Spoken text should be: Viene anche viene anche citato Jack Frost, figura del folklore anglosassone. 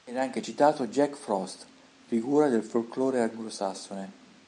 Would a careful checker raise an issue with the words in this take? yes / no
yes